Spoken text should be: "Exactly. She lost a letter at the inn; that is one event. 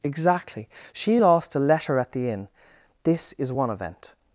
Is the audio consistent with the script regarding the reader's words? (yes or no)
no